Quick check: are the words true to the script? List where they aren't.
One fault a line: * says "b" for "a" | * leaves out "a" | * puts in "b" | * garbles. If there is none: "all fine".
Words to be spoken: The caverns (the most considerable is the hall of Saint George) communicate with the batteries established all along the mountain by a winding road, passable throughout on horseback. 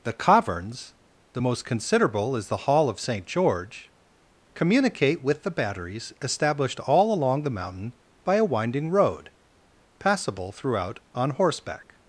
all fine